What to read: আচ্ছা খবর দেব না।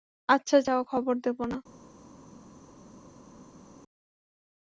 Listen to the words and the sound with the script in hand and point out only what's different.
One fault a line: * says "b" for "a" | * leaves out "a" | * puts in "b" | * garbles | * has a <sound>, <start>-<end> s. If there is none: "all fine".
* puts in "যাও"